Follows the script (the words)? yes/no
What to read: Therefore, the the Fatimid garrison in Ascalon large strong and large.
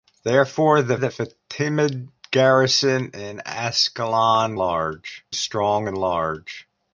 yes